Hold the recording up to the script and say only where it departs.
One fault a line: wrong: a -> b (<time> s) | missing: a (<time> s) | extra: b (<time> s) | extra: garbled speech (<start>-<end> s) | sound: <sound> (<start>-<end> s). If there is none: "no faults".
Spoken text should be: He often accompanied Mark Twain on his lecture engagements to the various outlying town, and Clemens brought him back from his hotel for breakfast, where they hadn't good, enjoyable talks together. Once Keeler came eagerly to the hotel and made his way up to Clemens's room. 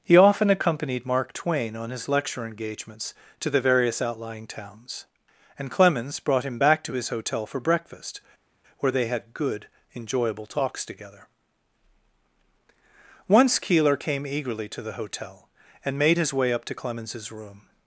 wrong: town -> towns (4.5 s)
wrong: from -> to (6.8 s)
wrong: hadn't -> had (9.1 s)